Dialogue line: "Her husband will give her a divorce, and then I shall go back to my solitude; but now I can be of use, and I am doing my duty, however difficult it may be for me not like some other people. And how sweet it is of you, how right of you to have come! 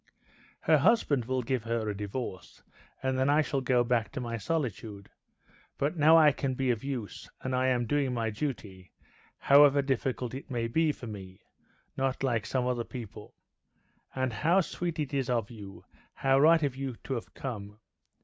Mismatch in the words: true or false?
false